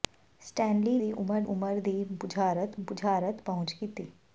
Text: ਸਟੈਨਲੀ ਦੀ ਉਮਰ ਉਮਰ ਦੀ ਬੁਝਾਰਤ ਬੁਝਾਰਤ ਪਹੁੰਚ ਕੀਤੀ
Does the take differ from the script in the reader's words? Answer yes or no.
no